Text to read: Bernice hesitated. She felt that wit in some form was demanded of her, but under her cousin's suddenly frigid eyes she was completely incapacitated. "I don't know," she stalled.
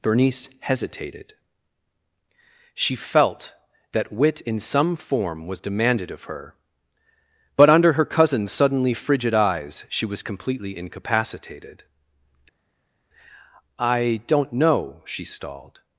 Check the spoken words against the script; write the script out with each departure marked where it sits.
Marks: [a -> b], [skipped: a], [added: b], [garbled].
Bernice hesitated. She felt that wit in some form was demanded of her, but under her cousin's suddenly frigid eyes she was completely incapacitated. "I don't know," she stalled.